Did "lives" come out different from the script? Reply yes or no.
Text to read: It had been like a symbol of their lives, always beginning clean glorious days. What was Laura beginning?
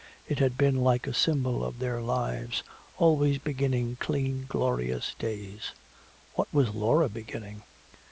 no